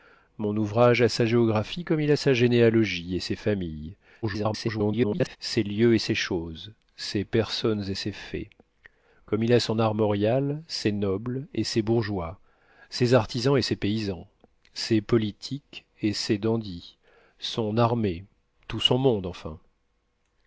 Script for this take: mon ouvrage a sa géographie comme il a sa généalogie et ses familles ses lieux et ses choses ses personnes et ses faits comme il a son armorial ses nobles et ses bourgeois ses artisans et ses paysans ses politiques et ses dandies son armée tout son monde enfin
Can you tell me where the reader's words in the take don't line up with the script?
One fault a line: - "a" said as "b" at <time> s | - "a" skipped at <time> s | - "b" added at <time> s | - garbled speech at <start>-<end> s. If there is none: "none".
- garbled speech at 4.2-5.4 s